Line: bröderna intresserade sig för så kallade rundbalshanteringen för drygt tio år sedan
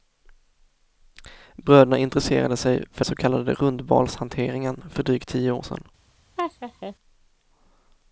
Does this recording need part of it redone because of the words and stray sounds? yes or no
yes